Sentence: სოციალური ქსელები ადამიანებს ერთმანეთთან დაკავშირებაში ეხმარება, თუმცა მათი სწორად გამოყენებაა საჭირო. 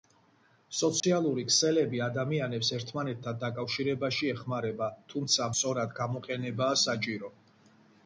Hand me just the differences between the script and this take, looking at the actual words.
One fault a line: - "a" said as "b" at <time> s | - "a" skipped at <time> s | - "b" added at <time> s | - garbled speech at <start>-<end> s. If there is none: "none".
- "მათი" skipped at 5.5 s